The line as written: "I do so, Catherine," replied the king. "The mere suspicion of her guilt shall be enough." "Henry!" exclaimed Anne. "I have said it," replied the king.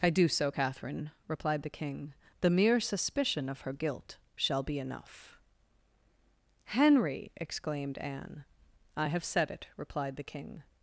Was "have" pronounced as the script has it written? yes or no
yes